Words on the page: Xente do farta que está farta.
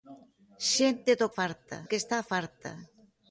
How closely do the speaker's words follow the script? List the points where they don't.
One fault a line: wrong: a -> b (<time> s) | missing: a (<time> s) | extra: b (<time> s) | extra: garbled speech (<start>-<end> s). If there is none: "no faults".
no faults